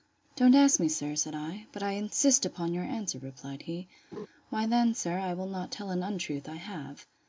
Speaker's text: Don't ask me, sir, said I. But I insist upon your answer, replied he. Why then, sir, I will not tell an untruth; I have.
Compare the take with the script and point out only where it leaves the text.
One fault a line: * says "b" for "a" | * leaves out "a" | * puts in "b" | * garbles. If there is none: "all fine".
all fine